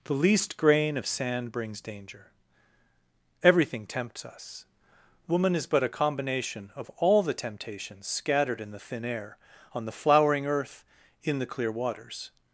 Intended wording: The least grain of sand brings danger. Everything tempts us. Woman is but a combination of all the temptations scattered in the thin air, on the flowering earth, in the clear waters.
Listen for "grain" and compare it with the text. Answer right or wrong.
right